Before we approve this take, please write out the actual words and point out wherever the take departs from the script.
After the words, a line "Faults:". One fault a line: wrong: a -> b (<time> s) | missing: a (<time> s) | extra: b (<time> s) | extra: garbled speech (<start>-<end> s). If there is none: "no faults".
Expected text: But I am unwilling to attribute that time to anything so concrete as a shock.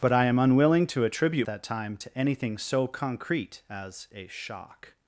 But I am unwilling to attribute that time to anything so concrete as a shock.
Faults:
no faults